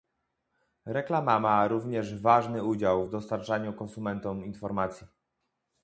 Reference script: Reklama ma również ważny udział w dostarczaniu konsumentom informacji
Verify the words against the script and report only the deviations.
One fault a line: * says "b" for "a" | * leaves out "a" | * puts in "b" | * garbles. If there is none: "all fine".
all fine